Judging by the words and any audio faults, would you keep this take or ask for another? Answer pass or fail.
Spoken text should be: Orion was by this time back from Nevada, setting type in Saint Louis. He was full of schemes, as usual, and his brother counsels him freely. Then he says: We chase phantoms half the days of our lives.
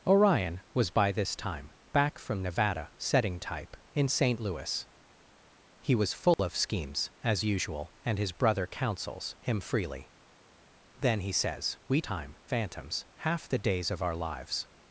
fail